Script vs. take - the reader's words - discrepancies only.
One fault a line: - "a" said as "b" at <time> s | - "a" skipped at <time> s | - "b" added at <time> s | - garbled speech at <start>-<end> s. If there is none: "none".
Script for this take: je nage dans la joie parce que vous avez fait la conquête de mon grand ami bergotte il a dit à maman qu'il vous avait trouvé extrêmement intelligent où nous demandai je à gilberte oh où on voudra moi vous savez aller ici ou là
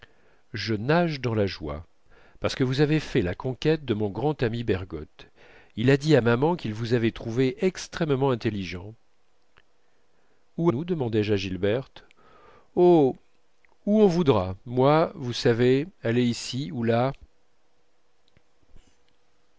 none